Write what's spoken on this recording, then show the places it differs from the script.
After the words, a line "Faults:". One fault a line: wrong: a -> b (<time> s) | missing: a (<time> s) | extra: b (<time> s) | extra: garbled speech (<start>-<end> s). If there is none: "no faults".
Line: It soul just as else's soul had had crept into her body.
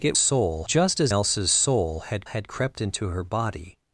It soul just as else's soul had had crept into her body.
Faults:
no faults